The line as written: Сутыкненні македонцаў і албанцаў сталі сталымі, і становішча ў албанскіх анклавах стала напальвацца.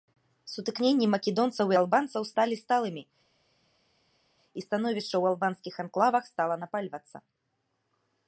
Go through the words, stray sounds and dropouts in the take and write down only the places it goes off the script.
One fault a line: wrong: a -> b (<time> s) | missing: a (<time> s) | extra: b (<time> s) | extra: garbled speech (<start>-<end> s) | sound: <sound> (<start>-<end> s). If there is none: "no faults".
no faults